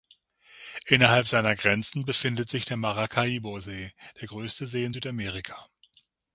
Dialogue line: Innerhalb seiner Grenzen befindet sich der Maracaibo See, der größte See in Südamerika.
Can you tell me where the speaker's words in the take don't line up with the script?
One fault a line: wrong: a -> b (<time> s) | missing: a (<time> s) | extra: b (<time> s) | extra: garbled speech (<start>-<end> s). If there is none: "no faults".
no faults